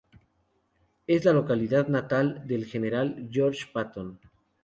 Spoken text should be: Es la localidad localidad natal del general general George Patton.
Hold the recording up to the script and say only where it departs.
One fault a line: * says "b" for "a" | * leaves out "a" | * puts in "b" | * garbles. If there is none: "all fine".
* leaves out "localidad"
* leaves out "general"